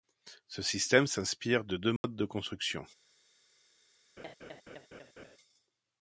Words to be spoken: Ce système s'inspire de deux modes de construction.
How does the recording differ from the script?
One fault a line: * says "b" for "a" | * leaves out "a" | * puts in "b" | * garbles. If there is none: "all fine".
all fine